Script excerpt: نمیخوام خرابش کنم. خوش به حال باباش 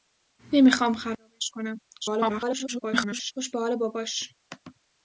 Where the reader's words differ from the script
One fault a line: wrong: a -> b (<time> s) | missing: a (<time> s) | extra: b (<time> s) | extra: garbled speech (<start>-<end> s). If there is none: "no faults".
extra: garbled speech (2.0-3.3 s)